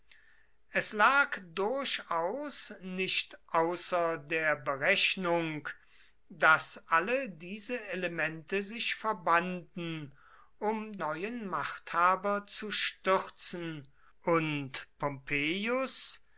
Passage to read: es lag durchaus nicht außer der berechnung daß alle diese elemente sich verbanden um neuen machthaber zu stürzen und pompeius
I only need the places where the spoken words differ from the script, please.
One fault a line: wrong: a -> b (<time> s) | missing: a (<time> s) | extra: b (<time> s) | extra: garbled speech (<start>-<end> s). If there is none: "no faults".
no faults